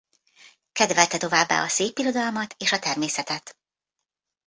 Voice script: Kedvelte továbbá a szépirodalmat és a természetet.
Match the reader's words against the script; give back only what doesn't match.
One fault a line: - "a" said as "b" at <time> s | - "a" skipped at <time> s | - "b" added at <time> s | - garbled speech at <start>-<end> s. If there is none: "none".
none